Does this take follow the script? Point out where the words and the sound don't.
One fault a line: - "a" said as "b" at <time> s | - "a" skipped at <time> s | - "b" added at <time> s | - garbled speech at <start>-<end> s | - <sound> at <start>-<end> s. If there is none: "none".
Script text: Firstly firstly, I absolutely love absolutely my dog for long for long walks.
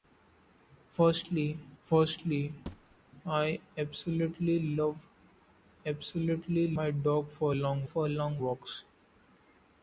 - thud at 2.7-3.0 s